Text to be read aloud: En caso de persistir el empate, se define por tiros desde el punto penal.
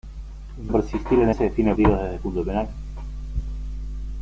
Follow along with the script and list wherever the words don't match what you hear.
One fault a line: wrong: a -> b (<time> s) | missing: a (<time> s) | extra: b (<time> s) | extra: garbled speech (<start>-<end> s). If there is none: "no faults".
missing: caso (0.7 s)
missing: empate (1.3 s)
missing: por (1.7 s)